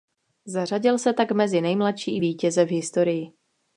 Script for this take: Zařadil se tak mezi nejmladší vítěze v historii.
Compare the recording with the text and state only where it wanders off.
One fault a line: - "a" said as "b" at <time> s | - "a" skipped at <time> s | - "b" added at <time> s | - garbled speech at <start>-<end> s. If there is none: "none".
none